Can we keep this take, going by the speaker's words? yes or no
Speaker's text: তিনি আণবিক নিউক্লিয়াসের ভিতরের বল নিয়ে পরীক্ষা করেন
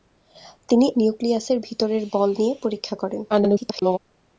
no